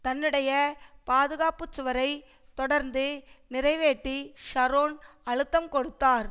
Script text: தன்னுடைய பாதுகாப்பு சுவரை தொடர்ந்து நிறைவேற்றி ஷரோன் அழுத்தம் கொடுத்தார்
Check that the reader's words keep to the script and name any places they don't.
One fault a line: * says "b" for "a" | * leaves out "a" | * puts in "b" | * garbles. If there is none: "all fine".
all fine